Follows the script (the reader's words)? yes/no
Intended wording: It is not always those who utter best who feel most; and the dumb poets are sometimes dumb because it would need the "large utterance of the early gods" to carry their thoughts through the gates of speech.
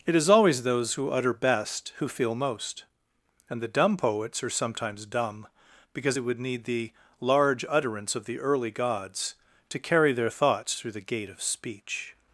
no